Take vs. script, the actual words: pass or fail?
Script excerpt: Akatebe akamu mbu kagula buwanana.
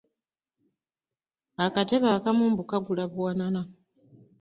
pass